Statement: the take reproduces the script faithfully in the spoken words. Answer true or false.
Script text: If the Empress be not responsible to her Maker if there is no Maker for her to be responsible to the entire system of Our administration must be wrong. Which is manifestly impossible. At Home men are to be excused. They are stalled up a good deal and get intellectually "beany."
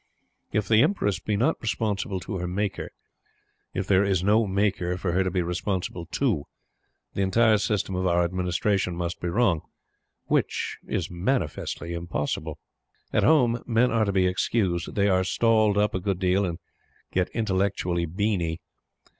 true